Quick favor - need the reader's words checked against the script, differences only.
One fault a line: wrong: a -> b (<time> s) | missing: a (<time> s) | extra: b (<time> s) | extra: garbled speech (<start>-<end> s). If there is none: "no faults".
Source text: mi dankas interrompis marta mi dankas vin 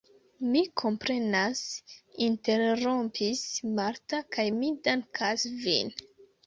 wrong: dankas -> komprenas (0.8 s)
extra: kaj (4.4 s)